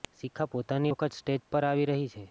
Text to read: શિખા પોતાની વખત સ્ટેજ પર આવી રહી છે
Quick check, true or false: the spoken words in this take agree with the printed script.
true